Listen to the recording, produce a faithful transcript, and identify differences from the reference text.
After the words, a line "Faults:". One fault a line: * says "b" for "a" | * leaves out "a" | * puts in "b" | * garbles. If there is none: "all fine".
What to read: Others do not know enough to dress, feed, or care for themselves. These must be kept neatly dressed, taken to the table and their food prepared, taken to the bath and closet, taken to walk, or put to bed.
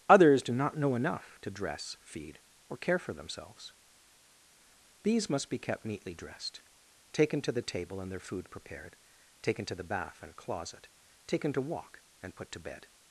Others do not know enough to dress, feed, or care for themselves. These must be kept neatly dressed, taken to the table and their food prepared, taken to the bath and closet, taken to walk, and put to bed.
Faults:
* says "and" for "or"